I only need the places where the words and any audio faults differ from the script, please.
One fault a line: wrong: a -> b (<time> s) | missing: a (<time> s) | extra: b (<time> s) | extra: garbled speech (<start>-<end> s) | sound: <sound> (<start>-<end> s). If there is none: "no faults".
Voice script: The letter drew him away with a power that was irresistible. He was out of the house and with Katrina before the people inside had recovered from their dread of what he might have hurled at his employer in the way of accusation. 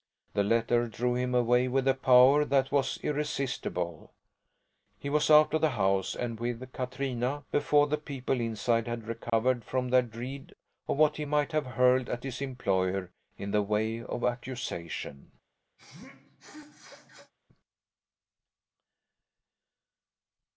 sound: dropout (9.3-9.3 s)
sound: sneeze (15.8-17.3 s)